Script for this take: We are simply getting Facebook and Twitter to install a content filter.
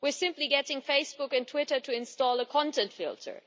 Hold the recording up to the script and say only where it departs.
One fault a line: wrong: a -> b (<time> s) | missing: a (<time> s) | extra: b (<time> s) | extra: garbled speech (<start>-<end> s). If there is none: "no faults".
no faults